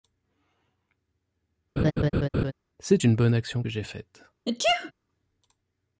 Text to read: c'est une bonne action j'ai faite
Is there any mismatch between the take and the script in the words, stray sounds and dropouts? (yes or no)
yes